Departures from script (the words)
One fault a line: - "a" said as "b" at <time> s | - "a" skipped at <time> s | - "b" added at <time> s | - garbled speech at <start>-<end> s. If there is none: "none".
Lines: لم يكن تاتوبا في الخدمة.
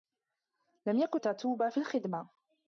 none